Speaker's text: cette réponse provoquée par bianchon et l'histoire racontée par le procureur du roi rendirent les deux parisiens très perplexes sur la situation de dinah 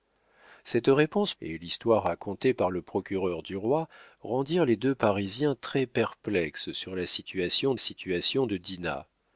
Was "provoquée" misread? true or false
true